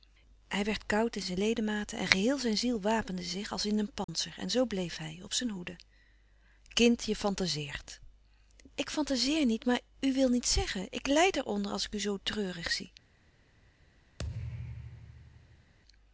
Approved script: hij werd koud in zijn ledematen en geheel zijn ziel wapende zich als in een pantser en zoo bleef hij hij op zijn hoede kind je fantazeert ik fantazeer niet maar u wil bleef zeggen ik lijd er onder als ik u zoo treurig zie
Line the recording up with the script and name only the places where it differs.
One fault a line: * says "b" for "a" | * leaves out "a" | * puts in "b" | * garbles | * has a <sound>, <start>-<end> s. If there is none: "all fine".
* has a dropout, 4.0-4.1 s
* leaves out "hij"
* says "niet" for "bleef"
* has a thud, 14.2-15.7 s